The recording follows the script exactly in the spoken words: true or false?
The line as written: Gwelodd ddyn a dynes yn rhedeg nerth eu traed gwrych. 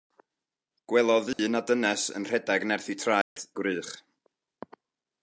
true